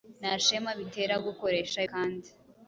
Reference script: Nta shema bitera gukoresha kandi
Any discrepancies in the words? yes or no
no